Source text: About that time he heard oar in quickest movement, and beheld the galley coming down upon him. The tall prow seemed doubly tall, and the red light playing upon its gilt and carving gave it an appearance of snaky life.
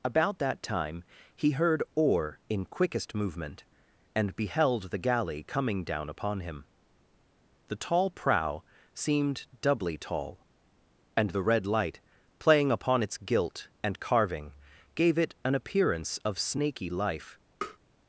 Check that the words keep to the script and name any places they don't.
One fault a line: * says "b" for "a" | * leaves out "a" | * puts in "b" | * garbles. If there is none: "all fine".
all fine